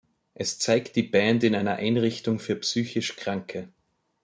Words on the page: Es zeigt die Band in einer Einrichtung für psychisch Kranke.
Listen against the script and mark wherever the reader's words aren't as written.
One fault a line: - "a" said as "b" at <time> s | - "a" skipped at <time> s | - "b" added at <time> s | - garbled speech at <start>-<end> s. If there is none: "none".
none